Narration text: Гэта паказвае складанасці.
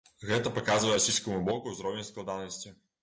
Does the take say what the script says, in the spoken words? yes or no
no